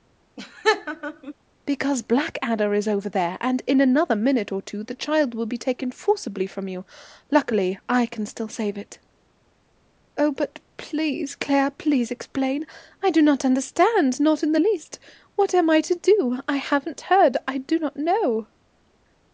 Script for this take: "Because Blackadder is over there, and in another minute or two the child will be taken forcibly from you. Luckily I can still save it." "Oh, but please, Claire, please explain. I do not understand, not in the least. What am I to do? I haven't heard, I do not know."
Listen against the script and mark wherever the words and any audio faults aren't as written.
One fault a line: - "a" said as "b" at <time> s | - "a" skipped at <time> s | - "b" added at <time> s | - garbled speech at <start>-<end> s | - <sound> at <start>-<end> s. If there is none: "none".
- laugh at 0.4-1.3 s